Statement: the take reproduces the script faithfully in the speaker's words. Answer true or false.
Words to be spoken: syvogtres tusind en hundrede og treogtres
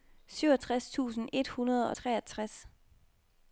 false